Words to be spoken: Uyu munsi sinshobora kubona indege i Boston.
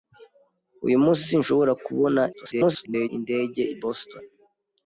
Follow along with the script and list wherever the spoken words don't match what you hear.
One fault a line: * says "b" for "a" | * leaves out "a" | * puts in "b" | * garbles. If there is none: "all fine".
* garbles